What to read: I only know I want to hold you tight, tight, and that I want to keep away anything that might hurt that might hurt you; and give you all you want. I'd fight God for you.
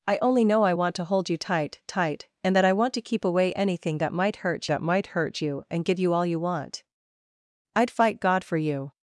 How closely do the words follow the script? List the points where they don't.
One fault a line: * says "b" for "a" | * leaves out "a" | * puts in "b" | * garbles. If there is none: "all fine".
all fine